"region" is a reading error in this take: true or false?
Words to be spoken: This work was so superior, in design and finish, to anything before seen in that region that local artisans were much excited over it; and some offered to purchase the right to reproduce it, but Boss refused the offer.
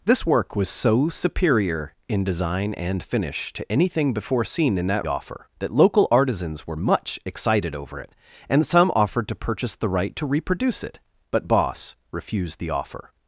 true